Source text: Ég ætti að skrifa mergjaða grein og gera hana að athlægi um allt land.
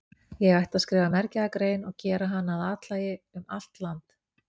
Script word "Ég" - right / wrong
right